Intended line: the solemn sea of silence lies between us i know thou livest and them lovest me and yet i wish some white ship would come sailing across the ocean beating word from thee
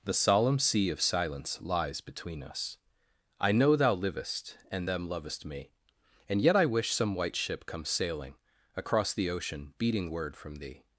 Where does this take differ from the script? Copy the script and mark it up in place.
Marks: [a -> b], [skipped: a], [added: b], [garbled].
the solemn sea of silence lies between us i know thou livest and them lovest me and yet i wish some white ship [skipped: would] come sailing across the ocean beating word from thee